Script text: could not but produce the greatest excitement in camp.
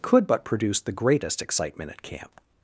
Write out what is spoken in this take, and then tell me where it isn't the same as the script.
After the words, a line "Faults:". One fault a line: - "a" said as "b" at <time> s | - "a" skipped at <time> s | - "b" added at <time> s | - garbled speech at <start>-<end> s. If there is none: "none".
could but produce the greatest excitement at camp.
Faults:
- "not" skipped at 0.3 s
- "in" said as "at" at 1.9 s